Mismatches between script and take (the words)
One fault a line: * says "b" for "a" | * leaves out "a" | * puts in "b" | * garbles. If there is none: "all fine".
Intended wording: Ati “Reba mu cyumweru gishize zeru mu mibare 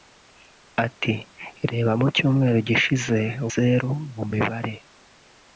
all fine